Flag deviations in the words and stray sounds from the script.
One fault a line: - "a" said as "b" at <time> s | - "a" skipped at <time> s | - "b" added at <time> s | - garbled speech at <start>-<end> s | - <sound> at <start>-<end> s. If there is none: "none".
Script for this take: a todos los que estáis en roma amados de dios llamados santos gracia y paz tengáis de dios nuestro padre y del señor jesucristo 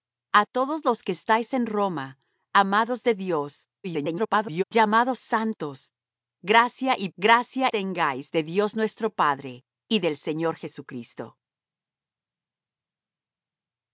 - garbled speech at 3.8-4.6 s
- "paz" said as "gracia" at 7.2 s